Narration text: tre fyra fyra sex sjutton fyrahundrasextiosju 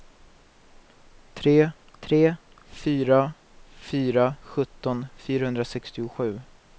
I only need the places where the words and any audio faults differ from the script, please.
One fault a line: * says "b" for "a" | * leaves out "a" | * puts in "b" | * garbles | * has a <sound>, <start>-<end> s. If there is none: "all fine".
* puts in "tre"
* leaves out "sex"